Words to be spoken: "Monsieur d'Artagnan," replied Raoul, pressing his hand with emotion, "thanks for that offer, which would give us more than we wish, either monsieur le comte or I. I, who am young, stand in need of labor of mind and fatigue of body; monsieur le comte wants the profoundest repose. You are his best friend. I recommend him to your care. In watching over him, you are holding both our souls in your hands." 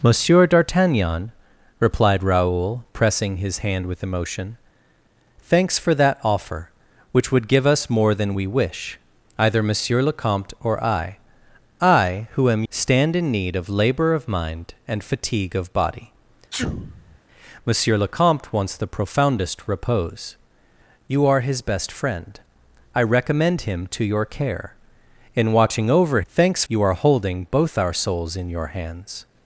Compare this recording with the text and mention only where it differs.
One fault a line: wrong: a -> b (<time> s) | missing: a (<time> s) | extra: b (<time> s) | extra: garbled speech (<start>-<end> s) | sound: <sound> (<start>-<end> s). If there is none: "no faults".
missing: young (12.6 s)
sound: sneeze (16.5-17.2 s)
wrong: him -> thanks (26.3 s)